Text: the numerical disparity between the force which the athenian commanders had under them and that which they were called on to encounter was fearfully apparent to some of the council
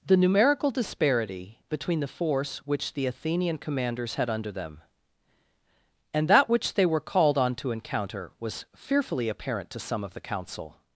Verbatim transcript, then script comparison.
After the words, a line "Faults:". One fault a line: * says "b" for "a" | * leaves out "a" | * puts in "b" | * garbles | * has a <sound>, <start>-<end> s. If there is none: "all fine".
the numerical disparity between the force which the athenian commanders had under them and that which they were called on to encounter was fearfully apparent to some of the council
Faults:
all fine